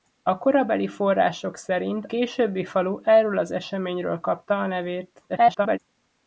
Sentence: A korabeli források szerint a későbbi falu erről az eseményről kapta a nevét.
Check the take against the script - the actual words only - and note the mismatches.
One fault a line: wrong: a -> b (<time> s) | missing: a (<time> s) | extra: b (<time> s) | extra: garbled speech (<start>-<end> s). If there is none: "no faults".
missing: a (2.0 s)
extra: garbled speech (5.3-5.8 s)